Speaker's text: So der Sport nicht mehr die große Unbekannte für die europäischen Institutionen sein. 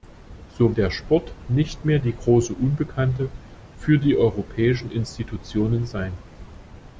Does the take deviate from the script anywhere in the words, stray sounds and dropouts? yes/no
no